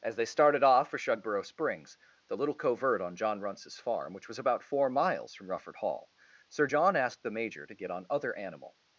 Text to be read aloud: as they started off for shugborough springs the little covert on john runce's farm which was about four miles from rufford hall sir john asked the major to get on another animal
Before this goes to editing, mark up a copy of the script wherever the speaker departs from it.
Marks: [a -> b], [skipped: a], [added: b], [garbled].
as they started off for shugborough springs the little covert on john runce's farm which was about four miles from rufford hall sir john asked the major to get on [another -> other] animal